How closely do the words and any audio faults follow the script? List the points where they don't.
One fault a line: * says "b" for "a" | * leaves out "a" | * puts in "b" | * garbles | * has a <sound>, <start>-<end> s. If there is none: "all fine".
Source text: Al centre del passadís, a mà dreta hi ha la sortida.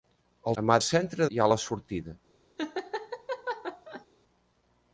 * leaves out "centre del passadís"
* says "centre" for "dreta"
* has a laugh, 2.6-4.1 s